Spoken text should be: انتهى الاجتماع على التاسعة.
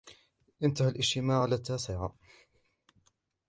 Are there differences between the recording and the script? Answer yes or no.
no